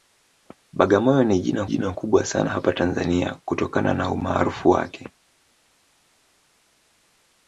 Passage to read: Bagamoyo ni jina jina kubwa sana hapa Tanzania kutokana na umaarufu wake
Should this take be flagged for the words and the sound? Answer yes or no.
no